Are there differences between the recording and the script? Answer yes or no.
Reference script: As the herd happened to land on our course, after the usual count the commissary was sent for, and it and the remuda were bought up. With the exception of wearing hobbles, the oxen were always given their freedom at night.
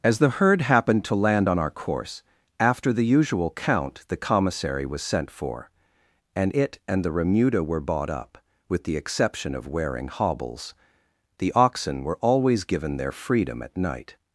no